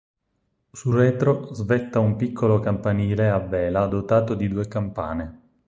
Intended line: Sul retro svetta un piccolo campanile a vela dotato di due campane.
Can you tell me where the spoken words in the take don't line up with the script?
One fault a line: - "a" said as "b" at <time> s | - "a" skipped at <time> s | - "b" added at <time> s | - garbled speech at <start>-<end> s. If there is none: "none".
none